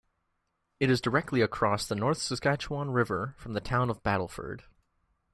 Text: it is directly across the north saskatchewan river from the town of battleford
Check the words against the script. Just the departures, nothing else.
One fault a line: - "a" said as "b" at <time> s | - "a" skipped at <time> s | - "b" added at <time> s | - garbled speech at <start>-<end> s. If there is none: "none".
none